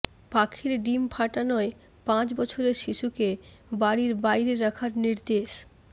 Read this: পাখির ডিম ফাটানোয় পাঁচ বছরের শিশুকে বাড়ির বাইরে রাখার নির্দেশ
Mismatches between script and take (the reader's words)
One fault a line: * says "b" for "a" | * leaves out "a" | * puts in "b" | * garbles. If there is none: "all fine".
all fine